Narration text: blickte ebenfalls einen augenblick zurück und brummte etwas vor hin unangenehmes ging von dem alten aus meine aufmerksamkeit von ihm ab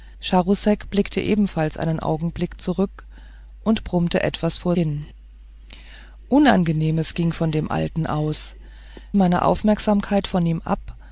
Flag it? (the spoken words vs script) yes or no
no